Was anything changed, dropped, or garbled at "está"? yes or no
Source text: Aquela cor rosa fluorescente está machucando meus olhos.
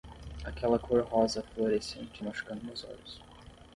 yes